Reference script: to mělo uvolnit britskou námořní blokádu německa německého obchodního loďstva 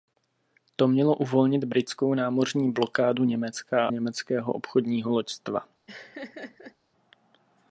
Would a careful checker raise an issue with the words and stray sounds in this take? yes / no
yes